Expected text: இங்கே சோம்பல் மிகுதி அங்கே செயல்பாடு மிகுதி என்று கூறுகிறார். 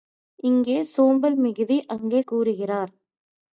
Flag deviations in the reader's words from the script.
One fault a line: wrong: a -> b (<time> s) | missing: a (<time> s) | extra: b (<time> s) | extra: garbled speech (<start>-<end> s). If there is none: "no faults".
missing: செயல்பாடு மிகுதி என்று (2.2 s)